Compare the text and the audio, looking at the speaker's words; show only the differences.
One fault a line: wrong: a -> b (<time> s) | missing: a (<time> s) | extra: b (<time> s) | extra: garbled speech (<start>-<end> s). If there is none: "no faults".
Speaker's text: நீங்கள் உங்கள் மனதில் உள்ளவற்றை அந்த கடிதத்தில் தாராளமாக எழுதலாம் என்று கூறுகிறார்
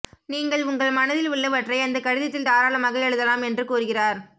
no faults